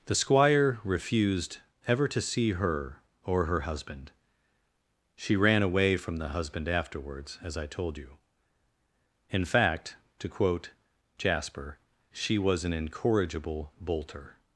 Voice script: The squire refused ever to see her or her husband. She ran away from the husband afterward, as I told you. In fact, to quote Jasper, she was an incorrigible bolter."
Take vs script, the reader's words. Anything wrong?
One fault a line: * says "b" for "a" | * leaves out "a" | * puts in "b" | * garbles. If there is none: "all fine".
* says "afterwards" for "afterward"